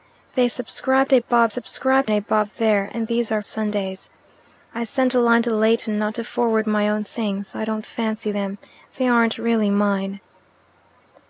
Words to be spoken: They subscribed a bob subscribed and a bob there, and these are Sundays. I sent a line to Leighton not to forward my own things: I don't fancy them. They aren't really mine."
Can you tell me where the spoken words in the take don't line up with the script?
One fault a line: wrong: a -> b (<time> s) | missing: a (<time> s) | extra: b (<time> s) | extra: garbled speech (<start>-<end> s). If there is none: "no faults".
no faults